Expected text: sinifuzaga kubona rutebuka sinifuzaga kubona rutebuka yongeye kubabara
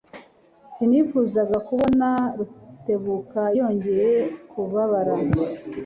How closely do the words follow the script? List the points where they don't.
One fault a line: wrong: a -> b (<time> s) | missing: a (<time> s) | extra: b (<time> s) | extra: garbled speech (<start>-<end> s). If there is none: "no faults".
missing: sinifuzaga kubona rutebuka (3.4 s)